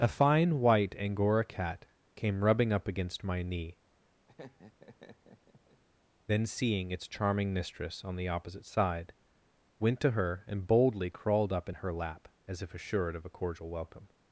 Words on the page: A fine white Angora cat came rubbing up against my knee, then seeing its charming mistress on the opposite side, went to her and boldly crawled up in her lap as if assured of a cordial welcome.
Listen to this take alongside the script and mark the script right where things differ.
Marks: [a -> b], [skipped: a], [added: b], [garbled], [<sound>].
A fine white Angora cat came rubbing up against my knee, [laugh] then seeing its charming mistress on the opposite side, went to her and boldly crawled up in her lap as if assured of a cordial welcome.